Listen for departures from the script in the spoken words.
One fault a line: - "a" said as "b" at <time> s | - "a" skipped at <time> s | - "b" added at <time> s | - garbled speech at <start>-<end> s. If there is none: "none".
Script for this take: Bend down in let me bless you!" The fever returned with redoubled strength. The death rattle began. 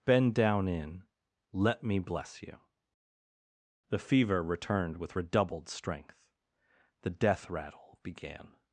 none